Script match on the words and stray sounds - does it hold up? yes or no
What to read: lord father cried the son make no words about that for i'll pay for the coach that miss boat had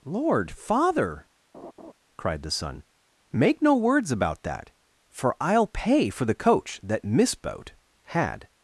no